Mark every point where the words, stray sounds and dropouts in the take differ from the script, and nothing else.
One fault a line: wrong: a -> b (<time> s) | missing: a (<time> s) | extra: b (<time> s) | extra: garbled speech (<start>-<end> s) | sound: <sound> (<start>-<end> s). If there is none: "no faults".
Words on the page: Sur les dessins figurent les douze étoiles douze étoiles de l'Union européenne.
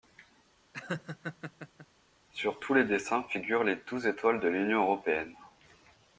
sound: laugh (0.7-1.9 s)
extra: tous (2.6 s)
missing: douze étoiles (4.4 s)